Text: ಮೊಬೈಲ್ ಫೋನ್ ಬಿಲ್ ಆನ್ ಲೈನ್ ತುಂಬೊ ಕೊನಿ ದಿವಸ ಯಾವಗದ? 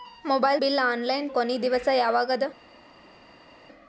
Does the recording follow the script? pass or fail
fail